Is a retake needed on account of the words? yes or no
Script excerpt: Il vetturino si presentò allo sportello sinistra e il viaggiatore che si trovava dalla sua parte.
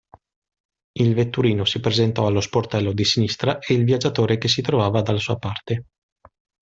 yes